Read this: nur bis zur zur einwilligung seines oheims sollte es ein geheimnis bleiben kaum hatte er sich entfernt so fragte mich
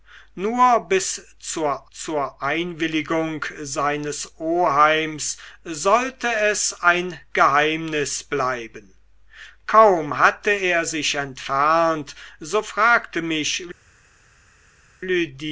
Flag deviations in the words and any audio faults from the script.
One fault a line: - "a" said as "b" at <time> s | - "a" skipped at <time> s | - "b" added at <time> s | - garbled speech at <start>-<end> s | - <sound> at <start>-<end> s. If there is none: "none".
none